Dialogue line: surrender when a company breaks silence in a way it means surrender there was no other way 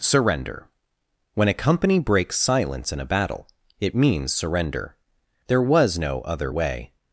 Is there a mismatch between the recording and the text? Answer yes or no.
yes